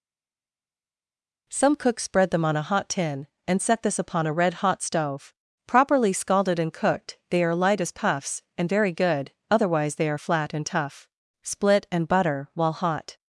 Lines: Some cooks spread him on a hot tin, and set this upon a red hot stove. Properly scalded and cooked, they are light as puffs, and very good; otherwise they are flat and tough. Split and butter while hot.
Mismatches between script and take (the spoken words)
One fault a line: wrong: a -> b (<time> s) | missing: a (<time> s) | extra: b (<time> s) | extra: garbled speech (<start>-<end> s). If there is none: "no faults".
wrong: him -> them (2.3 s)